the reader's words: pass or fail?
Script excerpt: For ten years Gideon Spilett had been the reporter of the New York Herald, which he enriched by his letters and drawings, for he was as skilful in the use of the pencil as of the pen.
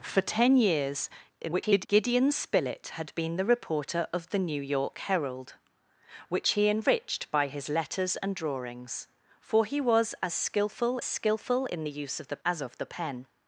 fail